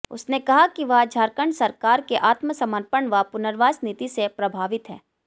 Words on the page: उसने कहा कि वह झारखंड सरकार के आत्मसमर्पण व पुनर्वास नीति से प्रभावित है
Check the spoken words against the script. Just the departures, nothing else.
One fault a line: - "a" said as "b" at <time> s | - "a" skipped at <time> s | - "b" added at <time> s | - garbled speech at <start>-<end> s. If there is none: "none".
none